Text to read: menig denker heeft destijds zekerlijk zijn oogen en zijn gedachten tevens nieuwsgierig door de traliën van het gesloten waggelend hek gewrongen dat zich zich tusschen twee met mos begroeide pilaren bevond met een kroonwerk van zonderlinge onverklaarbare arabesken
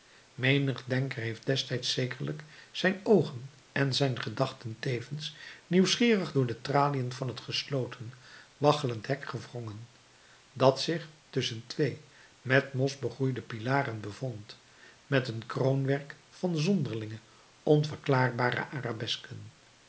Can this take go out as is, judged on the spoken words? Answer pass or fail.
fail